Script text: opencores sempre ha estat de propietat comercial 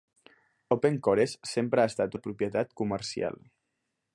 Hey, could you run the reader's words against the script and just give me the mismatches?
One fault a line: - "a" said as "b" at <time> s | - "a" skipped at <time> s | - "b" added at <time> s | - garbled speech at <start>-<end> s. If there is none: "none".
none